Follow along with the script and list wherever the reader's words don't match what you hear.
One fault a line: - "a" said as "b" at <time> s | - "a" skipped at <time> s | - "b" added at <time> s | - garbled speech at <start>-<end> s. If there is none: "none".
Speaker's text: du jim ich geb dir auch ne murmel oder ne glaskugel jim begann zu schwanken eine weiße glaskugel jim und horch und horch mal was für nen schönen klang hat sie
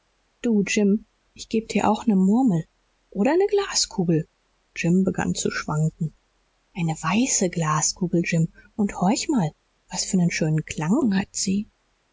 - "und horch" skipped at 9.3 s